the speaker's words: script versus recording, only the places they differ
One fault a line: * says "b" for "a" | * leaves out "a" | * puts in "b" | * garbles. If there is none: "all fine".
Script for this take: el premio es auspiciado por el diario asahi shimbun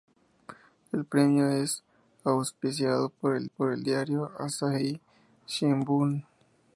* puts in "por el"